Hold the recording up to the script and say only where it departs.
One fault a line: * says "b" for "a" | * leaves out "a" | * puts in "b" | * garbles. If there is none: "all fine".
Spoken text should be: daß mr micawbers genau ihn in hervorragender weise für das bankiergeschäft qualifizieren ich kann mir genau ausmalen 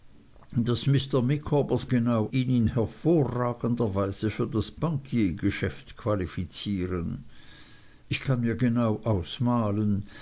all fine